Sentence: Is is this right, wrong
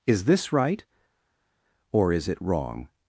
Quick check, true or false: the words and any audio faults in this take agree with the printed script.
false